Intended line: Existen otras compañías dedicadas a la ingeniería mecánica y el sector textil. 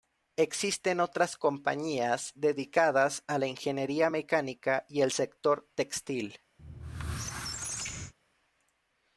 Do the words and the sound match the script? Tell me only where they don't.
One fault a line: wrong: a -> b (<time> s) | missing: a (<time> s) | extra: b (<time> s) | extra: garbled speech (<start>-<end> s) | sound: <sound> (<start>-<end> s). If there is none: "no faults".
sound: squeak (6.6-8.1 s)